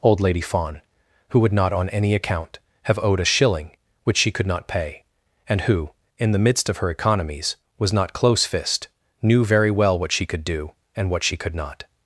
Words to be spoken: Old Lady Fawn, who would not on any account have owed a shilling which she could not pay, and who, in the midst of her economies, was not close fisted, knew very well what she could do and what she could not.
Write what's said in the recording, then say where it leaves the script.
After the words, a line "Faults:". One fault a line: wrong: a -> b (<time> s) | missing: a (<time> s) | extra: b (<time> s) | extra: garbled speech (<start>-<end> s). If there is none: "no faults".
Old Lady Fawn, who would not on any account have owed a shilling which she could not pay, and who, in the midst of her economies, was not close fist, knew very well what she could do and what she could not.
Faults:
wrong: fisted -> fist (8.4 s)